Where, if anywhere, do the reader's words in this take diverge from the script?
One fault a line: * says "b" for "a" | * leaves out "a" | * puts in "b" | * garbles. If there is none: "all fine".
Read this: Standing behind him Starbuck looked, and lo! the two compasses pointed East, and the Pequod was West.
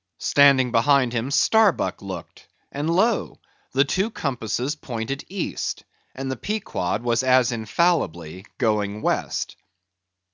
* puts in "as infallibly going"